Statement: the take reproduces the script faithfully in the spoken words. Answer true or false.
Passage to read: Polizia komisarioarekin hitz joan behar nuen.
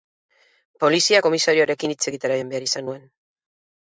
false